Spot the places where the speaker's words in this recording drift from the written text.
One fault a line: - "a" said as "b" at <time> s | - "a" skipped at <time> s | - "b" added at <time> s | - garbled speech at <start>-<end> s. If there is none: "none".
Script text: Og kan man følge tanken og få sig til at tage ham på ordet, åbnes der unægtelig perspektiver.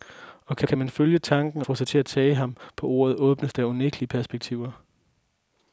- "kan" added at 0.7 s
- "og" skipped at 1.6 s